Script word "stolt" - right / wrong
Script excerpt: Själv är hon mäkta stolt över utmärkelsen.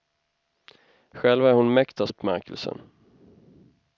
wrong